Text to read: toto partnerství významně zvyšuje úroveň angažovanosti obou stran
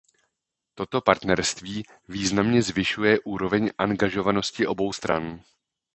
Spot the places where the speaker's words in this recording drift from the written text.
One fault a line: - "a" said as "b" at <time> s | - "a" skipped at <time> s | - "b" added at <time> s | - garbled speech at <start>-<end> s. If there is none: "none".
none